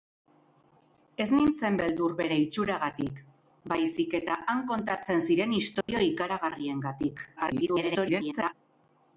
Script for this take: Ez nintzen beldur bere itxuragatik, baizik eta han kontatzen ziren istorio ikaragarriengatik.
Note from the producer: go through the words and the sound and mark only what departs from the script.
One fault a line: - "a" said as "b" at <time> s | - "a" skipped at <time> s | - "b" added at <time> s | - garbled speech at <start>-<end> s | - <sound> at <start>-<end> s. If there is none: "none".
- dropout at 5.8-5.9 s
- garbled speech at 7.4-8.5 s